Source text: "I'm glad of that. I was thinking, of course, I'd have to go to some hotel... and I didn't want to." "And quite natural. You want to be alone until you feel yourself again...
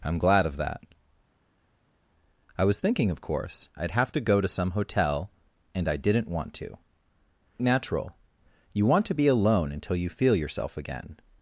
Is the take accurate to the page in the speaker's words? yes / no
no